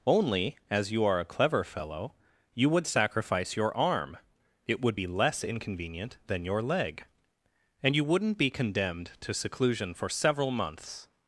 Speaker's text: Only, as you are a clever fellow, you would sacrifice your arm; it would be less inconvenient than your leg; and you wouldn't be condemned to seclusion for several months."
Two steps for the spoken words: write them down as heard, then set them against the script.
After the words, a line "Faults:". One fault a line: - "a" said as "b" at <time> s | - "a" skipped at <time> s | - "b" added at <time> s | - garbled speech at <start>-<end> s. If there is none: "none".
Only, as you are a clever fellow, you would sacrifice your arm; it would be less inconvenient than your leg; and you wouldn't be condemned to seclusion for several months."
Faults:
none